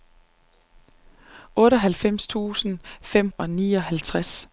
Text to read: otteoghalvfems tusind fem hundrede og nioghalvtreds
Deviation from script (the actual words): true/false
true